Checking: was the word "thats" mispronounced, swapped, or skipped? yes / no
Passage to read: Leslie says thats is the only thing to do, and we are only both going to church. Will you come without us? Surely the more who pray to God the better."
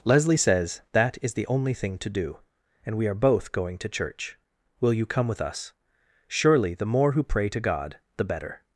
yes